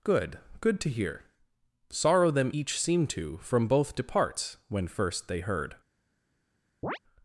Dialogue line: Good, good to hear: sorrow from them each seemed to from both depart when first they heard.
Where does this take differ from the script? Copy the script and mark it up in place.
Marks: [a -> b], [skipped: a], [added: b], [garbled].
Good, good to hear: sorrow [skipped: from] them each seemed to from both [depart -> departs] when first they heard.